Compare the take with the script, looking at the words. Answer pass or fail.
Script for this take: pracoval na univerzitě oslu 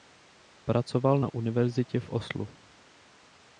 fail